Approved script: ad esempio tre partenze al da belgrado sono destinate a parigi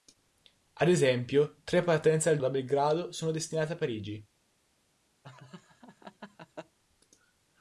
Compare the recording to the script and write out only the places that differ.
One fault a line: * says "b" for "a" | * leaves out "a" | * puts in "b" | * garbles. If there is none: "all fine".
all fine